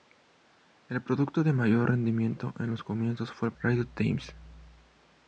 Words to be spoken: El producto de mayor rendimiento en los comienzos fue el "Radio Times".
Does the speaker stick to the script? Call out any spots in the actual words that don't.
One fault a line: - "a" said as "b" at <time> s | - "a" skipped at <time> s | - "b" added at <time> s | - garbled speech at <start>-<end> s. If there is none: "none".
none